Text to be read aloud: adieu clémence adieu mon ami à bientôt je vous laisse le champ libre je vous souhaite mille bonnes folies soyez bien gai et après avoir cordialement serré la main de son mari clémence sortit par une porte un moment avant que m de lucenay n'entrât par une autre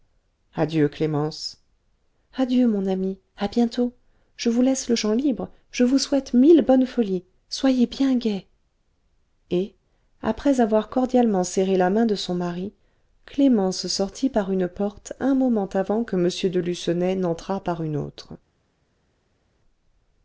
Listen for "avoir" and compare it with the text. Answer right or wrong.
right